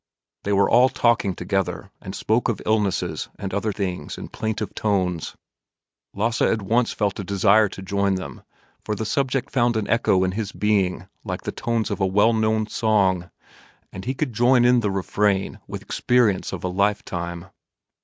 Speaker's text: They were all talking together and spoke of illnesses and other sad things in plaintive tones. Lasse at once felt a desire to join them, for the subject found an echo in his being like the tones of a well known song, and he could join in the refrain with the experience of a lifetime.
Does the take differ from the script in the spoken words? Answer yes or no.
yes